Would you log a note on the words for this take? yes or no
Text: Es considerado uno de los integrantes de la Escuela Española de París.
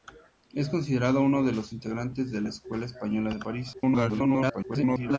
yes